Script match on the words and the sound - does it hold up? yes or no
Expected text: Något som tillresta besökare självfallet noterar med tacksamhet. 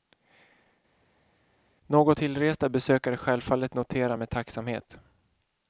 no